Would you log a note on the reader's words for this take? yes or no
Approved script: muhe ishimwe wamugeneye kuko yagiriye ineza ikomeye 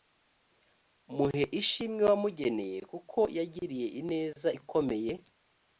no